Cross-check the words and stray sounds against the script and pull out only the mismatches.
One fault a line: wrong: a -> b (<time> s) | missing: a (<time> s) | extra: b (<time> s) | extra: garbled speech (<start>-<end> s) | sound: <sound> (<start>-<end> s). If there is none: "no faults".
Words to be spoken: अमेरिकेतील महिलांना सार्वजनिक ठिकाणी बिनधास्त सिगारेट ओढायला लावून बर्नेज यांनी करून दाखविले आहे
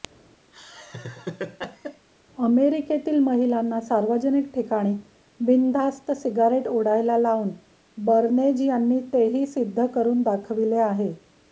sound: laugh (0.5-2.1 s)
extra: तेही सिद्ध (9.1 s)